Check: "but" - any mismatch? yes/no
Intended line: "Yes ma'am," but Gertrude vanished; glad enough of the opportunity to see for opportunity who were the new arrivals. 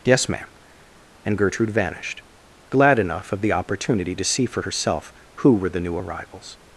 yes